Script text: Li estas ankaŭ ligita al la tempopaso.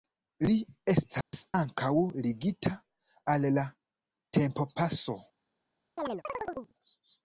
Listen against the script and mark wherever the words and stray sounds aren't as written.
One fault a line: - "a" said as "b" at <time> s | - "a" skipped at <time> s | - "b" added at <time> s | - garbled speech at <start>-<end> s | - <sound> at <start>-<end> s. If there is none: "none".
- dropout at 1.2-1.3 s
- chirp at 6.0-6.7 s